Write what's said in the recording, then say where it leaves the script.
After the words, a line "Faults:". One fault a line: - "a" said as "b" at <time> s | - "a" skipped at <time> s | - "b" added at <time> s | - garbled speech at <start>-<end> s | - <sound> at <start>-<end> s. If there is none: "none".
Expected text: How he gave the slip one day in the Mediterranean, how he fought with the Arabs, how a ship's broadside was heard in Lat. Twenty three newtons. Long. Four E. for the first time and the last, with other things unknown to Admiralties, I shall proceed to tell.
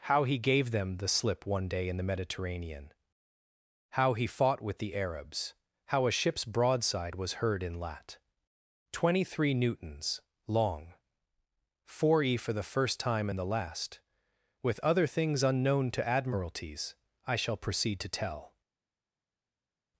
How he gave them the slip one day in the Mediterranean, how he fought with the Arabs, how a ship's broadside was heard in Lat. Twenty three newtons. Long. Four E. for the first time and the last, with other things unknown to Admiralties, I shall proceed to tell.
Faults:
- "them" added at 0.7 s